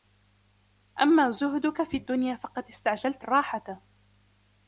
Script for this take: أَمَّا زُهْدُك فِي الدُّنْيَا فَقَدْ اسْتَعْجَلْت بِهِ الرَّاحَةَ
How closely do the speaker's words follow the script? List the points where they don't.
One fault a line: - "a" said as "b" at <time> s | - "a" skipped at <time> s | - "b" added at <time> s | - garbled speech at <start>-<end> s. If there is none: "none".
- "بِهِ" skipped at 3.2 s